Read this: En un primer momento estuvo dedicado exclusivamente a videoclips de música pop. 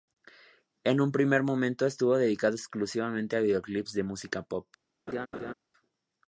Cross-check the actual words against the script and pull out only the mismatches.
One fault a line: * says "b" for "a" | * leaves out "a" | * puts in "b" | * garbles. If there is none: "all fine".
all fine